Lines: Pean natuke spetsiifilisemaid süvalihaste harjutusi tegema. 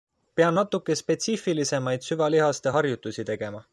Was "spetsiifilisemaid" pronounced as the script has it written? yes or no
yes